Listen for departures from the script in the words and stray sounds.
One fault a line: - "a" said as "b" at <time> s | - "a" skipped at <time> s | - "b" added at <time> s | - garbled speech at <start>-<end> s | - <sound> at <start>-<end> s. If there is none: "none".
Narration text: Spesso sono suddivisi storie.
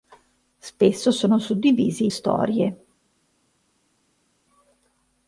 none